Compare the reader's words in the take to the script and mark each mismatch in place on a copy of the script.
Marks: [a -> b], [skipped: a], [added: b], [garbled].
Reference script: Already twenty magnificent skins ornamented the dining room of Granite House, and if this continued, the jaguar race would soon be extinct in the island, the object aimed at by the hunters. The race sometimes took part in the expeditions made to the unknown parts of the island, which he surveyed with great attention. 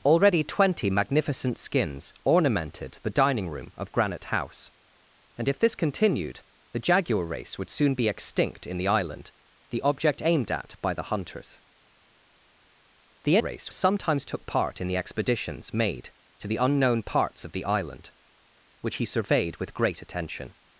Already twenty magnificent skins ornamented the dining room of Granite House, and if this continued, the jaguar race would soon be extinct in the island, the object aimed at by the hunters. The race sometimes took part in the expeditions made to the unknown parts of the island, which he surveyed with great attention.